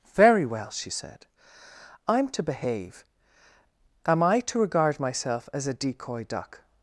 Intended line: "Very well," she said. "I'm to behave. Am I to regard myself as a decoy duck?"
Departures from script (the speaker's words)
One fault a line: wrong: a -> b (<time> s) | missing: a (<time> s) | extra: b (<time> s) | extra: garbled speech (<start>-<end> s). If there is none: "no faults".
no faults